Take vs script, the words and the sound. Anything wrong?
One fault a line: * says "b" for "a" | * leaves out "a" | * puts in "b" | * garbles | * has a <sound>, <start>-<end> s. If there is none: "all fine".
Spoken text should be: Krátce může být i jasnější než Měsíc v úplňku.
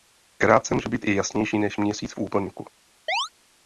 * has a chirp, 3.1-3.3 s